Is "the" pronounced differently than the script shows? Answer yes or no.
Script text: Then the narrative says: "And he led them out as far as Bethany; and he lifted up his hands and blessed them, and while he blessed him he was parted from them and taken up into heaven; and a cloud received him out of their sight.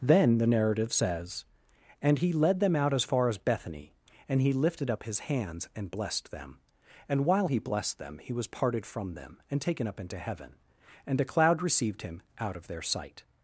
no